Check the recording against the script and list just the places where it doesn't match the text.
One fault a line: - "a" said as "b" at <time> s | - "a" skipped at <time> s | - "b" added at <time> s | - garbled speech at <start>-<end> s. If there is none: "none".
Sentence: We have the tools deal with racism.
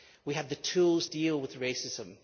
none